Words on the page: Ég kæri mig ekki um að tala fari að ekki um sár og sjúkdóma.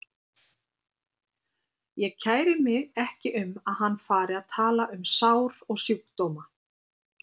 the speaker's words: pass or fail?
fail